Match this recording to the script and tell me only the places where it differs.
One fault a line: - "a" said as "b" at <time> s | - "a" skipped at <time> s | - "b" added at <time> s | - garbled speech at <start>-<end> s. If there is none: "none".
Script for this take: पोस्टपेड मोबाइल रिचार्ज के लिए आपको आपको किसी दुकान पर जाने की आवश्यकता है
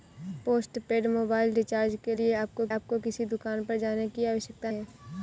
none